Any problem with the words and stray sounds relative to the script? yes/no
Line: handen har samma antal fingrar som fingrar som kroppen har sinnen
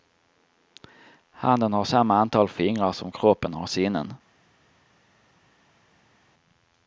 yes